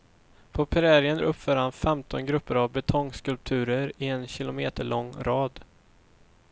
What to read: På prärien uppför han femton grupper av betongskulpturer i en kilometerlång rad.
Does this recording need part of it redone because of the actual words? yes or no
no